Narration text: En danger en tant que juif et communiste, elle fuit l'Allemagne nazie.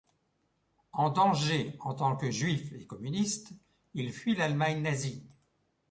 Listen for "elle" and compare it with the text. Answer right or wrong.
wrong